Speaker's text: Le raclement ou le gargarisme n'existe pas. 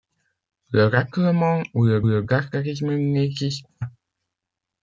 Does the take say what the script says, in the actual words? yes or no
no